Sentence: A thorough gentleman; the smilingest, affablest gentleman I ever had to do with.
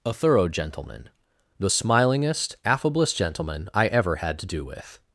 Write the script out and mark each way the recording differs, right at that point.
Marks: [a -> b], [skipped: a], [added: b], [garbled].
A thorough gentleman; the smilingest, affablest gentleman I ever had to do with.